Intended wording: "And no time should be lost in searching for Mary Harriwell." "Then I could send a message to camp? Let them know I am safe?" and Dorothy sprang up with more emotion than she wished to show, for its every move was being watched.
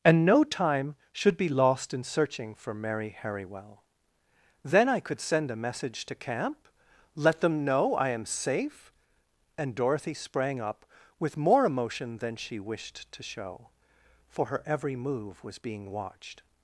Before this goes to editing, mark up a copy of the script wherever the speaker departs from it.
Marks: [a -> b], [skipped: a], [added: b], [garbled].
"And no time should be lost in searching for Mary Harriwell." "Then I could send a message to camp? Let them know I am safe?" and Dorothy sprang up with more emotion than she wished to show, for [its -> her] every move was being watched.